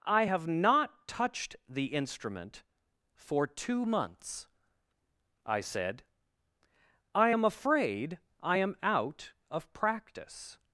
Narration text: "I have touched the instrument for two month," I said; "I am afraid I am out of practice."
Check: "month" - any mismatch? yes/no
yes